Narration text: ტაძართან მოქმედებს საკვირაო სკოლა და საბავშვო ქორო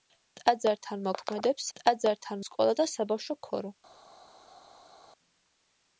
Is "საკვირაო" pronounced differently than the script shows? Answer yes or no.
yes